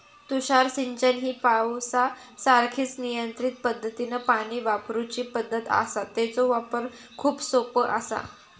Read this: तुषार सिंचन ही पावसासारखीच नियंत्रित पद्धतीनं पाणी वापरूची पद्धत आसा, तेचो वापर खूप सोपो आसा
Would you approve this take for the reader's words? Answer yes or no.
yes